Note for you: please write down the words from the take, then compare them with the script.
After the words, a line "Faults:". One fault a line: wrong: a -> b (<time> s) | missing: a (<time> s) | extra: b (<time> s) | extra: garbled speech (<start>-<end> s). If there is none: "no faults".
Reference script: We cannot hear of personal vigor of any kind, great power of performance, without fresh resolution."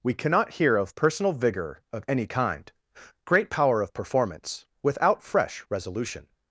We cannot hear of personal vigor of any kind, great power of performance, without fresh resolution."
Faults:
no faults